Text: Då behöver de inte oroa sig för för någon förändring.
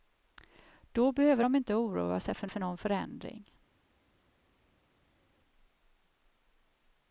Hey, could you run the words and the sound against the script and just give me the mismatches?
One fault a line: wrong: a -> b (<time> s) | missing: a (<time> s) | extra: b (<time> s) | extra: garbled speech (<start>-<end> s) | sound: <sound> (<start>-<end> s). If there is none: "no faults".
no faults